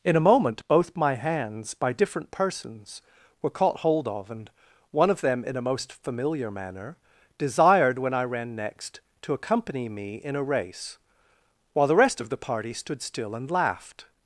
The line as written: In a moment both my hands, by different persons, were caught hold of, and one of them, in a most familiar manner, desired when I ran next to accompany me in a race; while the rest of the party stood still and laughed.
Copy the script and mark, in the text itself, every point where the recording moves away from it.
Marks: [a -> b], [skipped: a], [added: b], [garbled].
In a moment both my hands, by different persons, were caught hold of, and one of them, in a most familiar manner, desired when I ran next to accompany me in a race; while the rest of the party stood still and laughed.